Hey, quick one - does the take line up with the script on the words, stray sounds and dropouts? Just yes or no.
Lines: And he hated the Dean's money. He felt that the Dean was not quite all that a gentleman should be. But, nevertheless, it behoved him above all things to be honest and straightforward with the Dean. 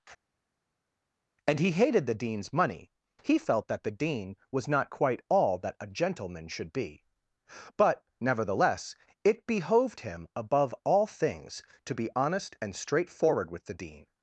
yes